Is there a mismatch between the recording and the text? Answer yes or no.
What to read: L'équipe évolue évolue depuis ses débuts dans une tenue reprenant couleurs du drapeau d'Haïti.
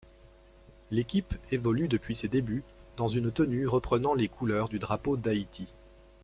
yes